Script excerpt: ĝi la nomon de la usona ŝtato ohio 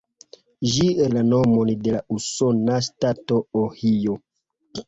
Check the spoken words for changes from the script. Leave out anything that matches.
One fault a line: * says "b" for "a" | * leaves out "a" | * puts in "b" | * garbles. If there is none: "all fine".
all fine